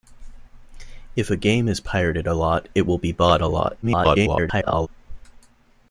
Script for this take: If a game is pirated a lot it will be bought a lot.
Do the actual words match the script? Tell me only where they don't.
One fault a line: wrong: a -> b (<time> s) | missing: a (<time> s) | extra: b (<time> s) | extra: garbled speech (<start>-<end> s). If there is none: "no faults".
extra: garbled speech (3.8-4.9 s)